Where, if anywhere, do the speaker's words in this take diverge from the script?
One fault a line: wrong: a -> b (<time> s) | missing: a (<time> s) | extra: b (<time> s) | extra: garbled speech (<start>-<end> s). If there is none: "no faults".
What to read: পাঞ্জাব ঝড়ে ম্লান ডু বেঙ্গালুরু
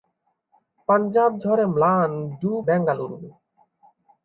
no faults